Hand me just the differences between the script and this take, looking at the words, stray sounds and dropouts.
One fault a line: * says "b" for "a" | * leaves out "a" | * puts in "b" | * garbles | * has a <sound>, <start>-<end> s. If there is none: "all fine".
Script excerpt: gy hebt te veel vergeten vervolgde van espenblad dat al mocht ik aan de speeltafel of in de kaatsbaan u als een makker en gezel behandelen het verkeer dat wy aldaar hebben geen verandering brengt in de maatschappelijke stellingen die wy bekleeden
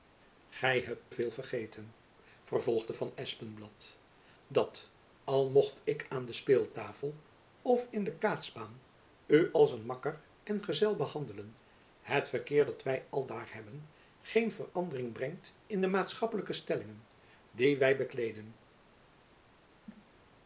* leaves out "te"
* has a cough, 19.9-20.1 s